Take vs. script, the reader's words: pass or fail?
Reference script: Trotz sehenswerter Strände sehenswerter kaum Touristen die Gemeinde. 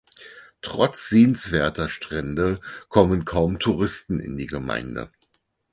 fail